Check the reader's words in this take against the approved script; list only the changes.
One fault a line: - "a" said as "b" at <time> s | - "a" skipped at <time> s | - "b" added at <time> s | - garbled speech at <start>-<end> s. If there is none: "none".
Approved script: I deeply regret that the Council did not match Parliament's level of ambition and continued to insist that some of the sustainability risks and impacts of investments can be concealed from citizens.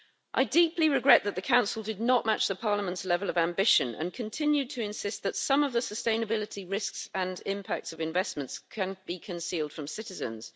none